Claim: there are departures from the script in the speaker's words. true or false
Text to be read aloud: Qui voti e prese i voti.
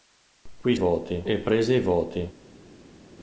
false